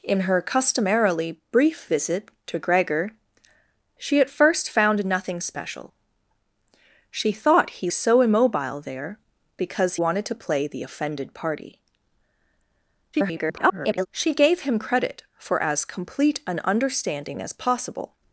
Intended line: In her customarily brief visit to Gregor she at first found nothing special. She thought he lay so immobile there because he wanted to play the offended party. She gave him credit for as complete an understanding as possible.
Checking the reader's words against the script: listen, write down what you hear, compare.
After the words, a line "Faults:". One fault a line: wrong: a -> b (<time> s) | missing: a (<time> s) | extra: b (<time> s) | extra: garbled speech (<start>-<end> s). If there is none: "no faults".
In her customarily brief visit to Gregor she at first found nothing special. She thought he so immobile there because wanted to play the offended party. [garbled] She gave him credit for as complete an understanding as possible.
Faults:
missing: lay (7.9 s)
missing: he (10.0 s)
extra: garbled speech (13.1-14.1 s)